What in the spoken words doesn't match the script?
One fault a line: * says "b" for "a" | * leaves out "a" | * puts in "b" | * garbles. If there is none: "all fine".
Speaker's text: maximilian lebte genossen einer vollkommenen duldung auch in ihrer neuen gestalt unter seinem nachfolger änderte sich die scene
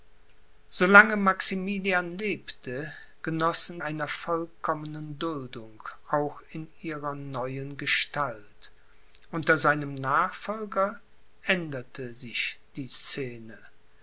all fine